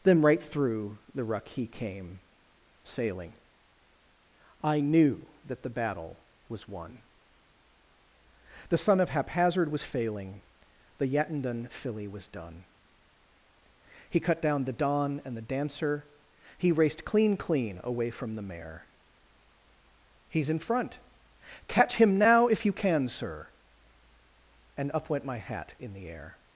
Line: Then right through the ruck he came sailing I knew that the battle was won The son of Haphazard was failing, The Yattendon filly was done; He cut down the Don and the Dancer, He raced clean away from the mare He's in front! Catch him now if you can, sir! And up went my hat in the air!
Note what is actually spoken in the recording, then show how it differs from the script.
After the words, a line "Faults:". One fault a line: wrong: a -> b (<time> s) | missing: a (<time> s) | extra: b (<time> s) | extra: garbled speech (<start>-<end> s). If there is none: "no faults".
Then right through the ruck he came sailing I knew that the battle was won The son of Haphazard was failing, The Yattendon filly was done; He cut down the Don and the Dancer, He raced clean clean away from the mare He's in front! Catch him now if you can, sir! And up went my hat in the air!
Faults:
extra: clean (17.4 s)